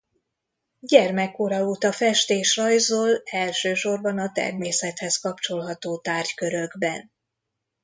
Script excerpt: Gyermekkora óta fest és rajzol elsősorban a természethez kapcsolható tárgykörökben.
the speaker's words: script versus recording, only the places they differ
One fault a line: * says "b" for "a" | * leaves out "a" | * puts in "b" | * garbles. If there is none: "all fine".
all fine